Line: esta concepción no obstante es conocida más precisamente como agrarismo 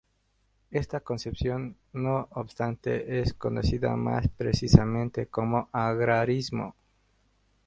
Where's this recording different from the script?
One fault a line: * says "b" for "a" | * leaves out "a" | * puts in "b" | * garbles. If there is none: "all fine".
all fine